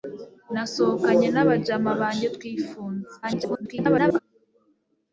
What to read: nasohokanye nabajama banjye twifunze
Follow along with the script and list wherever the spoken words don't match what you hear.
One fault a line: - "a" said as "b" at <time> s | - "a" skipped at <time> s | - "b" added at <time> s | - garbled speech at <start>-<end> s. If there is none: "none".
- garbled speech at 3.2-4.2 s